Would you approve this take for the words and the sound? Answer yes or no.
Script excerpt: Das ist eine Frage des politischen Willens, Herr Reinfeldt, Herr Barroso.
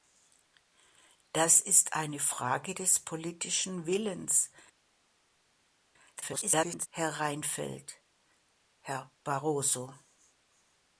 no